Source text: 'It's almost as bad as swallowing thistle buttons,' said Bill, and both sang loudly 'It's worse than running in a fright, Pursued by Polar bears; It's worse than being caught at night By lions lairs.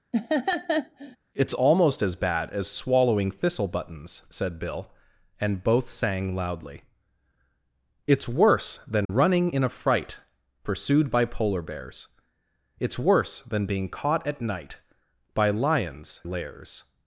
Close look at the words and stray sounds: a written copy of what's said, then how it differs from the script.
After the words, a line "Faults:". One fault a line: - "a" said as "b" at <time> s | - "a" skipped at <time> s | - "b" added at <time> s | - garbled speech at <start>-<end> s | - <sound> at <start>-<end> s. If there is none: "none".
'It's almost as bad as swallowing thistle buttons,' said Bill, and both sang loudly 'It's worse than running in a fright, Pursued by Polar bears; It's worse than being caught at night By lions lairs.
Faults:
- laugh at 0.1-1.2 s
- dropout at 9.1-9.1 s